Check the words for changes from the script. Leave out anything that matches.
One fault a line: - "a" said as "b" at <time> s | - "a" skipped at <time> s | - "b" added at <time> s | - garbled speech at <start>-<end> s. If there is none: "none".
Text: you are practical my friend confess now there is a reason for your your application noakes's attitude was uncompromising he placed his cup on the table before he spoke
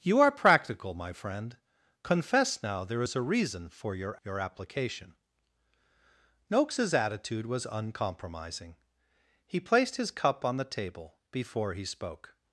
none